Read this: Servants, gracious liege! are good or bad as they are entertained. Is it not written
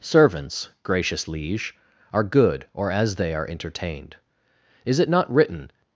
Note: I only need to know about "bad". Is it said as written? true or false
false